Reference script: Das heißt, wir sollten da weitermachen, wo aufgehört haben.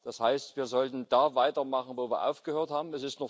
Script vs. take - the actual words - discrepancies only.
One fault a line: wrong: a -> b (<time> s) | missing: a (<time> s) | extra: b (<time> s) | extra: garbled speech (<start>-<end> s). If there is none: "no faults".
extra: wir (2.1 s)